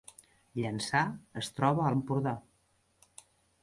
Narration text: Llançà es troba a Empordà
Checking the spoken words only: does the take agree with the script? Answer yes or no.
yes